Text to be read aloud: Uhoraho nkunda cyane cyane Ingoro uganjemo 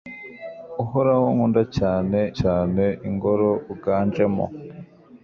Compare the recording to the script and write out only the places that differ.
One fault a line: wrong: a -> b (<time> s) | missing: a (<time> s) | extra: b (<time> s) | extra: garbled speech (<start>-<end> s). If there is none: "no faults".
no faults